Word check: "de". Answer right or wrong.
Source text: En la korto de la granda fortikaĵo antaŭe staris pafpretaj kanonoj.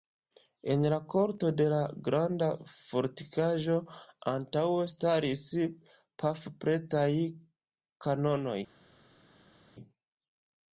right